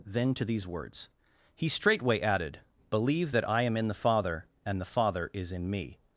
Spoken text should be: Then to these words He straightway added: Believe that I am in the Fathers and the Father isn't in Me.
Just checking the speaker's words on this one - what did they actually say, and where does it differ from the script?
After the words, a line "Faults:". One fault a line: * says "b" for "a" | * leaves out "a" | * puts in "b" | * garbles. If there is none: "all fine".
Then to these words He straightway added: Believe that I am in the Father and the Father is in Me.
Faults:
* says "Father" for "Fathers"
* says "is" for "isn't"